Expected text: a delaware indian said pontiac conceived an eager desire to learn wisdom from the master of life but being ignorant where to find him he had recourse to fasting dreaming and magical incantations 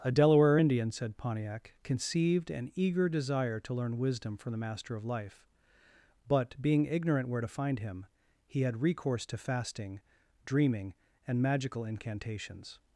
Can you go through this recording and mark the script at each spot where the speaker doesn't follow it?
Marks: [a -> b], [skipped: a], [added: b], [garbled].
a delaware indian said pontiac conceived an eager desire to learn wisdom from the master of life but being ignorant where to find him he had recourse to fasting dreaming and magical incantations